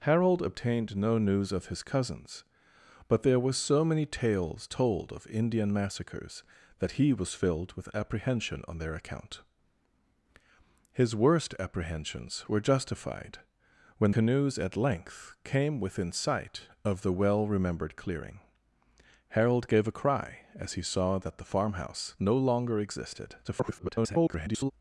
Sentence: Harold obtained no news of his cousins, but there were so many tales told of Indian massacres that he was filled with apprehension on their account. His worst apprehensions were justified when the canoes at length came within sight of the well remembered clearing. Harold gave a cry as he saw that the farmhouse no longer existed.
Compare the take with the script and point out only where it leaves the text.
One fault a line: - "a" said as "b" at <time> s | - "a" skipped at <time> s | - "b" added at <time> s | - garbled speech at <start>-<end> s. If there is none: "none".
- "the" skipped at 14.1 s
- garbled speech at 23.4-24.7 s